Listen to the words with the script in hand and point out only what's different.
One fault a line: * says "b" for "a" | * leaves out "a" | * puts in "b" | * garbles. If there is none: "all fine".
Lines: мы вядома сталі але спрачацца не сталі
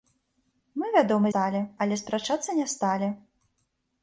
all fine